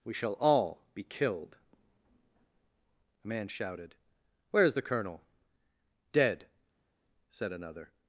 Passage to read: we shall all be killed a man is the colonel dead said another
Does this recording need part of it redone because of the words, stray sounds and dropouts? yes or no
yes